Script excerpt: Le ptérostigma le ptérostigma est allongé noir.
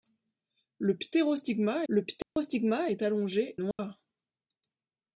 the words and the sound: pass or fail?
fail